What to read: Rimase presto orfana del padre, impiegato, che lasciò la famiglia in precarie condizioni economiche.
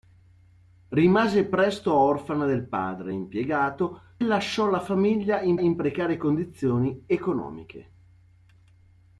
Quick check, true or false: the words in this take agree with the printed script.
false